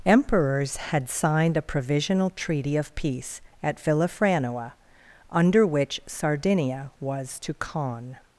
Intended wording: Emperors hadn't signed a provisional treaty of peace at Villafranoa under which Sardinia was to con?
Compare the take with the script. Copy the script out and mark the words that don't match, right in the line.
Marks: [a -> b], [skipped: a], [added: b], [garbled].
Emperors [hadn't -> had] signed a provisional treaty of peace at Villafranoa under which Sardinia was to con?